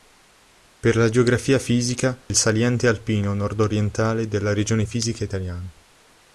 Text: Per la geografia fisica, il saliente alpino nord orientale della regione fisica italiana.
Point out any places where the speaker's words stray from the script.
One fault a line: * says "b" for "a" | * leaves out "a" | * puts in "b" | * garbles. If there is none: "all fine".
all fine